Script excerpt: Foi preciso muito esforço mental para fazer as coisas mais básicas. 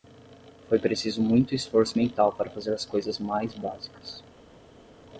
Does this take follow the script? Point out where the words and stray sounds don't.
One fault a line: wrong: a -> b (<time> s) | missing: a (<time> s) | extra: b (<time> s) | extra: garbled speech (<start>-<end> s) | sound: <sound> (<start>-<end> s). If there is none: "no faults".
no faults